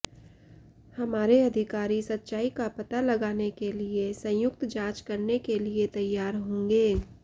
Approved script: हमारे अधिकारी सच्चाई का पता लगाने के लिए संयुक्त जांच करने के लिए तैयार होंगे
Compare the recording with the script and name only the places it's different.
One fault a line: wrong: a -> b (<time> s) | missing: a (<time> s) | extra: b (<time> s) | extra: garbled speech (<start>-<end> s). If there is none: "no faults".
no faults